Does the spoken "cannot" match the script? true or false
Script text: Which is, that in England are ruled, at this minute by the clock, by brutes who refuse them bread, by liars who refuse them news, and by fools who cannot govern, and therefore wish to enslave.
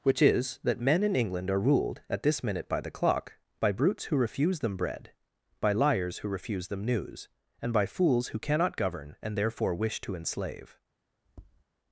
true